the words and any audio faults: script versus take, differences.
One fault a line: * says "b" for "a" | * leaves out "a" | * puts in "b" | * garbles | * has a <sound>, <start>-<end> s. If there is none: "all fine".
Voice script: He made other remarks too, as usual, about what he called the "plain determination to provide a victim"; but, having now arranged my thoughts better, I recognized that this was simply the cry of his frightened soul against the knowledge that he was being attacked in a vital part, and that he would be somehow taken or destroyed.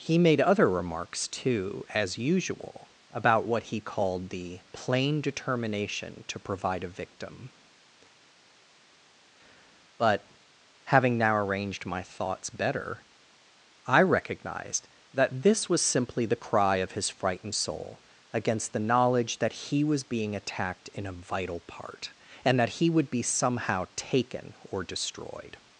all fine